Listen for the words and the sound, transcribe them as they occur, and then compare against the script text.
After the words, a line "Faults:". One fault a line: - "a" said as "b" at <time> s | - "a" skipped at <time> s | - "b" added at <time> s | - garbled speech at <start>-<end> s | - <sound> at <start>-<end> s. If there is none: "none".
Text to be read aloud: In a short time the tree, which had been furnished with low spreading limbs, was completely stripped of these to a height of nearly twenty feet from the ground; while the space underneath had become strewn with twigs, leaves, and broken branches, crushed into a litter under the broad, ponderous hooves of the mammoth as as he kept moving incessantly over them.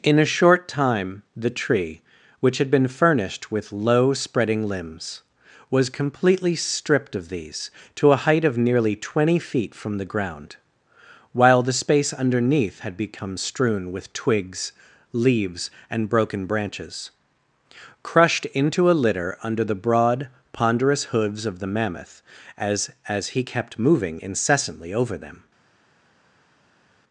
In a short time the tree, which had been furnished with low spreading limbs, was completely stripped of these to a height of nearly twenty feet from the ground; while the space underneath had become strewn with twigs, leaves, and broken branches, crushed into a litter under the broad, ponderous hooves of the mammoth as as he kept moving incessantly over them.
Faults:
none